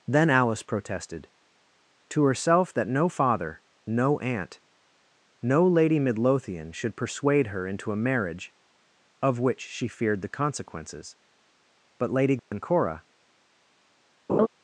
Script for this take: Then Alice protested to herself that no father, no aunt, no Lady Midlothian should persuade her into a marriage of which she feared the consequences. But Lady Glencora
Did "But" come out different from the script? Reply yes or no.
no